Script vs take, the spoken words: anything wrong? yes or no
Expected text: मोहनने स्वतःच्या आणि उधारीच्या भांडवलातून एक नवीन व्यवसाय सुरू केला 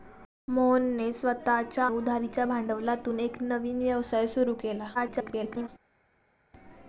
yes